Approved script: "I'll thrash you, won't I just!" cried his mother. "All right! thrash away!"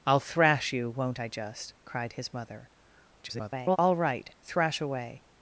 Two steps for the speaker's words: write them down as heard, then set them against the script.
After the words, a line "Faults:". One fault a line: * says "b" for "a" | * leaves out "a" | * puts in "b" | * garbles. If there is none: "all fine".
"I'll thrash you, won't I just!" cried his mother. [garbled] "All right! thrash away!"
Faults:
* garbles